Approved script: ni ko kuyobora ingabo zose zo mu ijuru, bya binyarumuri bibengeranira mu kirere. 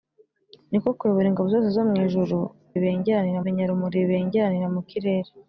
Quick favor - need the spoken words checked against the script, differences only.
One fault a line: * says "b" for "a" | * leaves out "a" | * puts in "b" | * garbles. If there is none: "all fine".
* says "bibengeranira" for "bya"